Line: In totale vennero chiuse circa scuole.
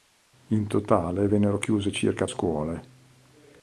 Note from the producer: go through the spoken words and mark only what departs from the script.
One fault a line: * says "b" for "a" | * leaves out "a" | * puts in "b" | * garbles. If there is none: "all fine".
all fine